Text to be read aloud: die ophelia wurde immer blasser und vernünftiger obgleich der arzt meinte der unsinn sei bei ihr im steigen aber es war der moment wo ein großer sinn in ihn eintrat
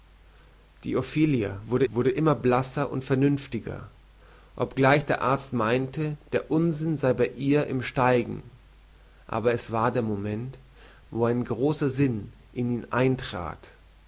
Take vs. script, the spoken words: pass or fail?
fail